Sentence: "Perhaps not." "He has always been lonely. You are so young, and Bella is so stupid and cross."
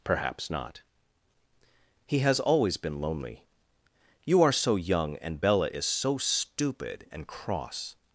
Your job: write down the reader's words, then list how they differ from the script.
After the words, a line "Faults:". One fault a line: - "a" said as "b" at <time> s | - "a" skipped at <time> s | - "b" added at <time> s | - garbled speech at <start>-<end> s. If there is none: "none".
"Perhaps not." "He has always been lonely. You are so young, and Bella is so stupid and cross."
Faults:
none